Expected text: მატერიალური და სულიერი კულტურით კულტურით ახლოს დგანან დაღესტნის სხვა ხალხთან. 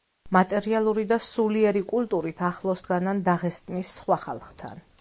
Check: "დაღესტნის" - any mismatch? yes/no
no